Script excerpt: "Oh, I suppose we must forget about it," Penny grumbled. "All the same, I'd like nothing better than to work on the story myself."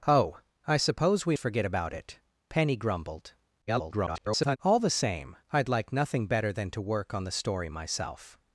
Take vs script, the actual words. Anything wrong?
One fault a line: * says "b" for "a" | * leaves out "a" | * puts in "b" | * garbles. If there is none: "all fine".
* leaves out "must"
* garbles